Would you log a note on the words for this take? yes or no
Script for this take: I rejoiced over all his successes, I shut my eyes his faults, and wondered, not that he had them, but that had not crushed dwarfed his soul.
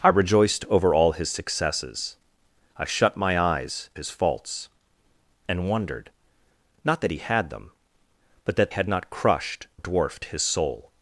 no